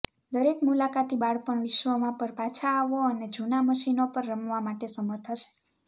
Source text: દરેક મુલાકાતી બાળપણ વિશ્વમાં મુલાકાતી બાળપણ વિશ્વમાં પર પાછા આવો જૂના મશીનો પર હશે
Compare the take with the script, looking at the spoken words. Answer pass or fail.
fail